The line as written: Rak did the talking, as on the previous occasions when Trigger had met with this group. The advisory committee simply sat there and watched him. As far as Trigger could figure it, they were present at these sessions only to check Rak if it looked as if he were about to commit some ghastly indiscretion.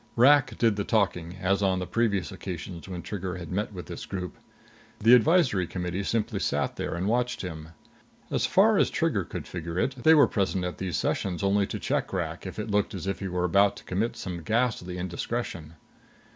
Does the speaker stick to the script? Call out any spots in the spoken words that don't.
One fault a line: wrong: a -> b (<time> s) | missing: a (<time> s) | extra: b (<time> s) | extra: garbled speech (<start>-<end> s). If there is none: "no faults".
no faults